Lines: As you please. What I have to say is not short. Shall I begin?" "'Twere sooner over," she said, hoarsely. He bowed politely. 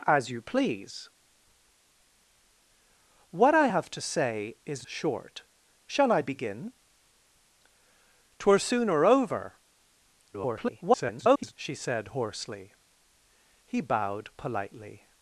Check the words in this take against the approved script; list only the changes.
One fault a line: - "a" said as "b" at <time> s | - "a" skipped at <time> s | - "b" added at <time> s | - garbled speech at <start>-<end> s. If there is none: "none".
- "not" skipped at 4.9 s
- garbled speech at 10.3-11.5 s